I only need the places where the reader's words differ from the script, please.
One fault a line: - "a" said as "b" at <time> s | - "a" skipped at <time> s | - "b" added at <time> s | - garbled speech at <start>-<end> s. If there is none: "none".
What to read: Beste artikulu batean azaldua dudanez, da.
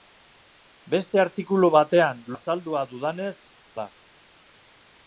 none